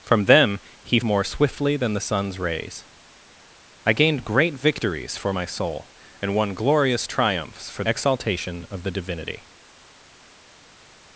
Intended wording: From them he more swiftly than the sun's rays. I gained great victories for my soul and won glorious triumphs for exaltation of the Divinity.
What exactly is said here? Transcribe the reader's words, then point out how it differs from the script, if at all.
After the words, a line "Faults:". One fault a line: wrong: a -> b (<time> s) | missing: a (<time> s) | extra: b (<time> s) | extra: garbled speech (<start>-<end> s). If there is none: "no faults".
From them he more swiftly than the sun's rays. I gained great victories for my soul and won glorious triumphs for exaltation of the Divinity.
Faults:
no faults